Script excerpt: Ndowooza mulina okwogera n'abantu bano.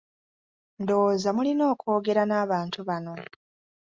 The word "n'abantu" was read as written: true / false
true